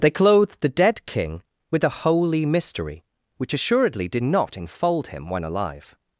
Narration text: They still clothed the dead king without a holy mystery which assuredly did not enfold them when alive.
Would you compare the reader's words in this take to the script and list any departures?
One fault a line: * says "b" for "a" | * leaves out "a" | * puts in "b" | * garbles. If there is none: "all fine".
* leaves out "still"
* says "with" for "without"
* says "him" for "them"